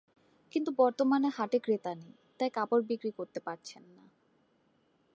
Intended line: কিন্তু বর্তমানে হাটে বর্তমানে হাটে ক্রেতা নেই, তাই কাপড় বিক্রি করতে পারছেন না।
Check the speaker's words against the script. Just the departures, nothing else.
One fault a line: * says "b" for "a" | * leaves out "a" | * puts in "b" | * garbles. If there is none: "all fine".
* leaves out "বর্তমানে হাটে"